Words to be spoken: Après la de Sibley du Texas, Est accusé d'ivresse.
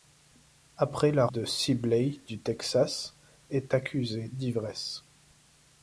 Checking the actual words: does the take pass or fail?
pass